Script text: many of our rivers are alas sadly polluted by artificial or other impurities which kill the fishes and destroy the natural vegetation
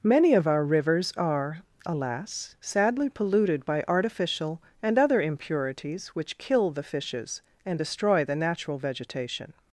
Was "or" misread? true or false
true